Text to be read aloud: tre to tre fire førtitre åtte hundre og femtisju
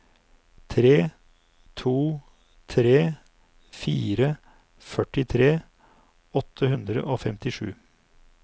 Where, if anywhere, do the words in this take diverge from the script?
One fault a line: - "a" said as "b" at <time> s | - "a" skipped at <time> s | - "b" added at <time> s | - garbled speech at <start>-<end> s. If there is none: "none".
none